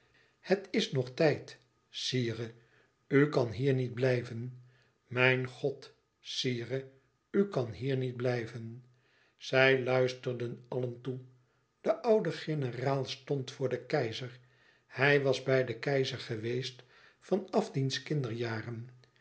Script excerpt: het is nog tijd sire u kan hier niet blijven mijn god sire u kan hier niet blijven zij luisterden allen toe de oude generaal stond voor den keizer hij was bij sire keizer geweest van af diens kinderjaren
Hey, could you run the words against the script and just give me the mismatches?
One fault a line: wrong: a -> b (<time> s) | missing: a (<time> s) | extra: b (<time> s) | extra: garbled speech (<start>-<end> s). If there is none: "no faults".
wrong: sire -> den (15.6 s)